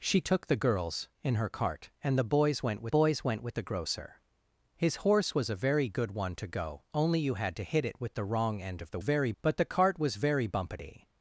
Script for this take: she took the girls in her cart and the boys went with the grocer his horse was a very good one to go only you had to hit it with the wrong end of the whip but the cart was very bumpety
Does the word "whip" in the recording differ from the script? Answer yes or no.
yes